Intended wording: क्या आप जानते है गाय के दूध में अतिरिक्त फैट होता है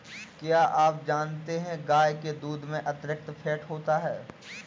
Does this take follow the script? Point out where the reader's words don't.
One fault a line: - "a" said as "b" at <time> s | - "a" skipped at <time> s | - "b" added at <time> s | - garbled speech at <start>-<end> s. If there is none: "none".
none